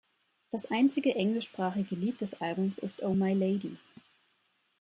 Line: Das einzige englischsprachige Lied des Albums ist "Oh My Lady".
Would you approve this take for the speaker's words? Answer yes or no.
yes